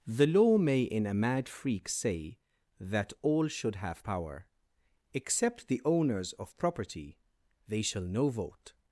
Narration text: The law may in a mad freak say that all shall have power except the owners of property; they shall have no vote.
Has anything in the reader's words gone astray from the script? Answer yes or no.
yes